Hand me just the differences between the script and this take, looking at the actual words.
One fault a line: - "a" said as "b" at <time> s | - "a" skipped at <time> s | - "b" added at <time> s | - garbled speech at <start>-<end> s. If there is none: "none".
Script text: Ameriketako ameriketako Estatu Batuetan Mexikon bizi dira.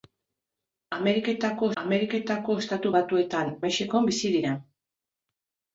none